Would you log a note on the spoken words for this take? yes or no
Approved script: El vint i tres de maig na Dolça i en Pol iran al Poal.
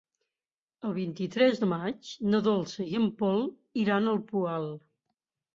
no